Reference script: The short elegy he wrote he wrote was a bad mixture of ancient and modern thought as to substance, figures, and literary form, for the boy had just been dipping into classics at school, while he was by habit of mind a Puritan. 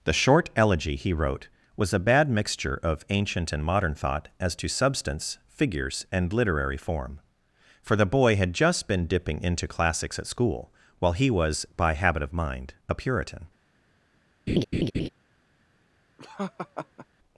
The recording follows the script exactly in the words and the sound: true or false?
false